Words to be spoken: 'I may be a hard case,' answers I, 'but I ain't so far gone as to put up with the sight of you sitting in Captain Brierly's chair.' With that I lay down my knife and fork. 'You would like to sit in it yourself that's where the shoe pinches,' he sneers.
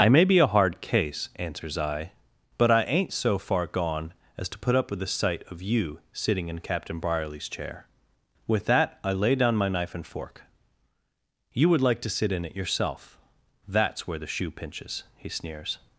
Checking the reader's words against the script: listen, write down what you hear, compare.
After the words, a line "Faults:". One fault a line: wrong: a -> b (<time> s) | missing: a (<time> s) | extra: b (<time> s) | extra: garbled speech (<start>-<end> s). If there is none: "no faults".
'I may be a hard case,' answers I, 'but I ain't so far gone as to put up with the sight of you sitting in Captain Brierly's chair.' With that I lay down my knife and fork. 'You would like to sit in it yourself that's where the shoe pinches,' he sneers.
Faults:
no faults